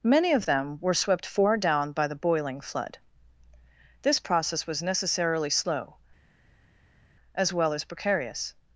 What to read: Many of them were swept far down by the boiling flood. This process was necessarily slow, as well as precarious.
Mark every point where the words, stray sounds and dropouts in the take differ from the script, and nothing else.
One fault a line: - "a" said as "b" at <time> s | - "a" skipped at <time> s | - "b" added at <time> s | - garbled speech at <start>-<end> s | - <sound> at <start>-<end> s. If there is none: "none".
none